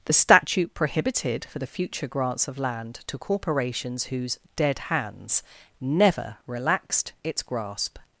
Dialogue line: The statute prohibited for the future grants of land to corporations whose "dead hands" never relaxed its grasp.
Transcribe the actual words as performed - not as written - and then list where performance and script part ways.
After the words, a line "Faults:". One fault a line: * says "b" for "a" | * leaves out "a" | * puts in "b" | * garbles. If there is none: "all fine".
The statute prohibited for the future grants of land to corporations whose "dead hands" never relaxed its grasp.
Faults:
all fine